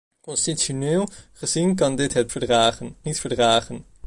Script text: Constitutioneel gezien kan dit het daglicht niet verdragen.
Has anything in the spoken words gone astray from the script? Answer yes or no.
yes